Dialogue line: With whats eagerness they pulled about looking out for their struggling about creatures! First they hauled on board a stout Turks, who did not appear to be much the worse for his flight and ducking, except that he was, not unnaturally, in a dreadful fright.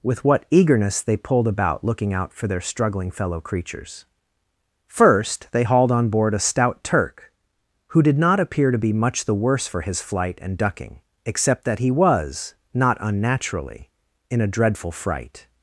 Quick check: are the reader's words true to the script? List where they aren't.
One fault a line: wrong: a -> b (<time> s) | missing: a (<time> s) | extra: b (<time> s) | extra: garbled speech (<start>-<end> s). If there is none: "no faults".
wrong: whats -> what (0.2 s)
wrong: about -> fellow (3.1 s)
wrong: Turks -> Turk (6.8 s)